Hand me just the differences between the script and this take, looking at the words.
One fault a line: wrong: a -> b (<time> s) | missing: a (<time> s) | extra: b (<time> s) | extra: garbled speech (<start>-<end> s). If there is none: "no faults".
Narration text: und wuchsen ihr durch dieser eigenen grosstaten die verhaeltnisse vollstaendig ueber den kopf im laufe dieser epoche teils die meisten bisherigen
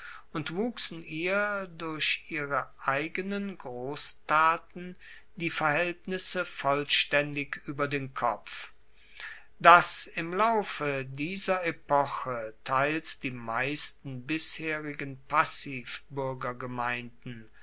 wrong: dieser -> ihre (2.3 s)
extra: dass (9.6 s)